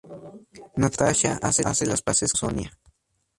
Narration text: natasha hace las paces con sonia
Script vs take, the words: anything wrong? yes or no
yes